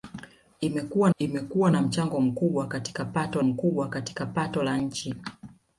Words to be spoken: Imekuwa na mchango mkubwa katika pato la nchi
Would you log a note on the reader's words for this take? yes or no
yes